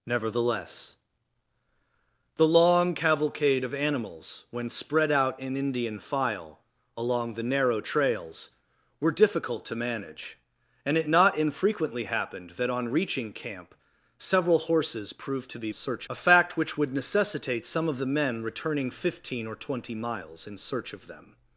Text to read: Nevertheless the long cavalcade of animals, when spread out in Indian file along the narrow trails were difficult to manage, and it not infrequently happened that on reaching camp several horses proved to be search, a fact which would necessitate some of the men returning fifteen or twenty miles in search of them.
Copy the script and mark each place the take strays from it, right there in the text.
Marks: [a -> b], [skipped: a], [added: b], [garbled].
Nevertheless the long cavalcade of animals, when spread out in Indian file along the narrow trails were difficult to manage, and it not infrequently happened that on reaching camp several horses proved to be search, a fact which would necessitate some of the men returning fifteen or twenty miles in search of them.